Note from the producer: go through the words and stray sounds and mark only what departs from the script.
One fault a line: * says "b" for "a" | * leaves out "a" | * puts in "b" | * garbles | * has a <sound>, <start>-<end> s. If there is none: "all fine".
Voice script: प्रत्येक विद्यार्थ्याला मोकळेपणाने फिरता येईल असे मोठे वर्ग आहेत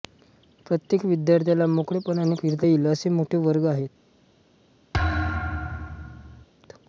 * has a thud, 4.9-6.5 s